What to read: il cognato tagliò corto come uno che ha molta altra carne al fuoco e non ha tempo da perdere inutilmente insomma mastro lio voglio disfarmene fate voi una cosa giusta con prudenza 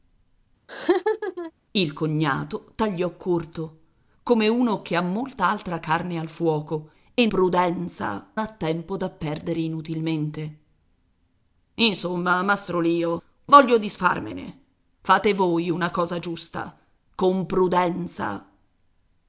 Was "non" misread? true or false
true